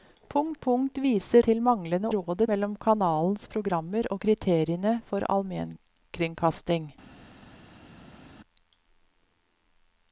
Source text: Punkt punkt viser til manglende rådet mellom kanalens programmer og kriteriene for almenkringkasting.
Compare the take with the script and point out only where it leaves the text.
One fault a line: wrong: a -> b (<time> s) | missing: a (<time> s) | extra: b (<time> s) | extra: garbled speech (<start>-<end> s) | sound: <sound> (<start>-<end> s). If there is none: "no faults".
no faults